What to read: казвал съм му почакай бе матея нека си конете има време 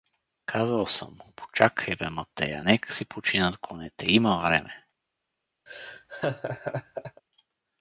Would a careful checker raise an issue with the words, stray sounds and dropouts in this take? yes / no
yes